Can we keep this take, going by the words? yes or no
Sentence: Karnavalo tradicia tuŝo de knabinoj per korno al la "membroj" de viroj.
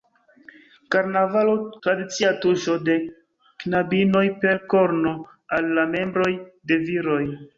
yes